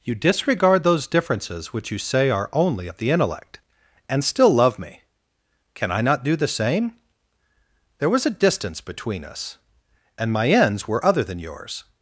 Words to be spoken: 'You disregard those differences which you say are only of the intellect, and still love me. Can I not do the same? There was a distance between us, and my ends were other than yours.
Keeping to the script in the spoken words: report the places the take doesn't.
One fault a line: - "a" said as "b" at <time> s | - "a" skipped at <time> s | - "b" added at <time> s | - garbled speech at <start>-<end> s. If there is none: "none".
none